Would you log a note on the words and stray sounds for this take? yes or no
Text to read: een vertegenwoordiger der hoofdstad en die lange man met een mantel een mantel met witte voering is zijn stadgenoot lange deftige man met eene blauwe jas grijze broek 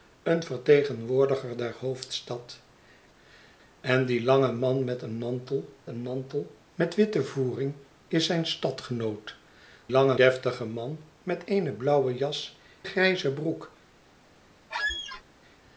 yes